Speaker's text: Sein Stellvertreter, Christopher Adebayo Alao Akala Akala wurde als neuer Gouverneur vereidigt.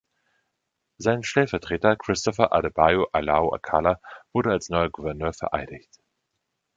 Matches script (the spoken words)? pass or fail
fail